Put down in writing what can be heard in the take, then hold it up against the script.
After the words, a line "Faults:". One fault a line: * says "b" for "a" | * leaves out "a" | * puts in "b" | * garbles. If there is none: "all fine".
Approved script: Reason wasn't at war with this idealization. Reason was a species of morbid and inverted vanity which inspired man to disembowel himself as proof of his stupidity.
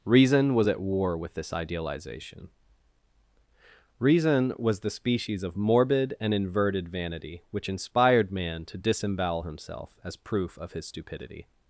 Reason was at war with this idealization. Reason was the species of morbid and inverted vanity which inspired man to disembowel himself as proof of his stupidity.
Faults:
* says "was" for "wasn't"
* says "the" for "a"